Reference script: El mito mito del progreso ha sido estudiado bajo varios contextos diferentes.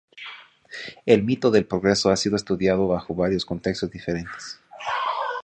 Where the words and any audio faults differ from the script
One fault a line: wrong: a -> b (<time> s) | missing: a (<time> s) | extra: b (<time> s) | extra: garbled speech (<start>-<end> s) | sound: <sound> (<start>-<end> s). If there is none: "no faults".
missing: mito (1.5 s)